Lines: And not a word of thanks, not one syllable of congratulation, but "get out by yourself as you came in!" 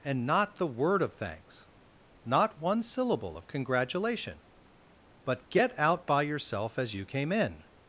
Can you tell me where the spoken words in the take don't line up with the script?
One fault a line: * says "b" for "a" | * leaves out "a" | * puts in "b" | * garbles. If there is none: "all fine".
* says "the" for "a"